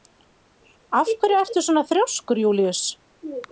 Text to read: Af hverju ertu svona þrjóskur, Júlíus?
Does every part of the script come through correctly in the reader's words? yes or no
yes